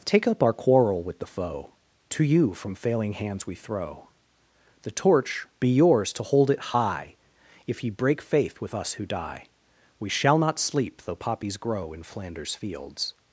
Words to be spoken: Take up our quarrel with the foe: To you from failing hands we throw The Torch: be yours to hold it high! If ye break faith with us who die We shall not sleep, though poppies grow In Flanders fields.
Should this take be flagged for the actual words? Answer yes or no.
no